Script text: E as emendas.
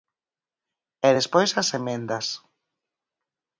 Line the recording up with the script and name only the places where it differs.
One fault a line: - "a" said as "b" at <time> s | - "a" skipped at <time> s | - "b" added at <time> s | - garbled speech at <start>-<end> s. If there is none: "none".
- "despois" added at 1.2 s